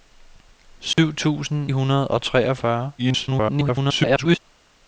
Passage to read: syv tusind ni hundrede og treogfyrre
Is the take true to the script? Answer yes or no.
no